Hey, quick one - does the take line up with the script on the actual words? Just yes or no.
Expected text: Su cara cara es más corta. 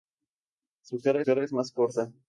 yes